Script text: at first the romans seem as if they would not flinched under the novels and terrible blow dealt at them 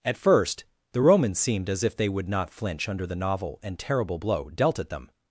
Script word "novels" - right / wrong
wrong